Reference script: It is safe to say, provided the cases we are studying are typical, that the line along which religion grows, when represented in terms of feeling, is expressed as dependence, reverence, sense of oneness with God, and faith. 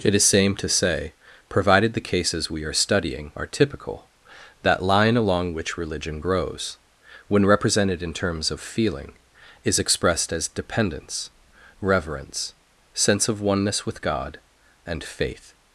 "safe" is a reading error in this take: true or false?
true